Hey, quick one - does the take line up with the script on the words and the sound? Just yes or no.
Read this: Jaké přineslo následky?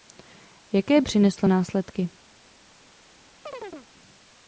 no